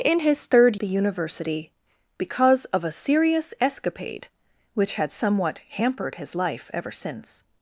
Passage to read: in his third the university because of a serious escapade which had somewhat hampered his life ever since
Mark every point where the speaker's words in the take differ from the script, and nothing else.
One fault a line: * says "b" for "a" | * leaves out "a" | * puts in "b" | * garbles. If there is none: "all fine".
all fine